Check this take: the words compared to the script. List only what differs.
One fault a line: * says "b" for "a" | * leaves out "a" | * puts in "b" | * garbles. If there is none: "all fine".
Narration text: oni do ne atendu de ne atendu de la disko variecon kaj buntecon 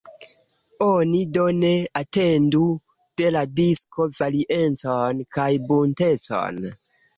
* leaves out "ne atendu de"